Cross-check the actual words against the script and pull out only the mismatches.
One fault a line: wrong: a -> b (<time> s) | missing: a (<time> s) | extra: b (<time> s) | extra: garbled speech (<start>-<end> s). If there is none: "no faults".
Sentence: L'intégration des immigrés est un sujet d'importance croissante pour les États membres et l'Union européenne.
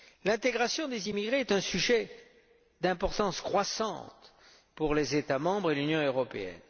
no faults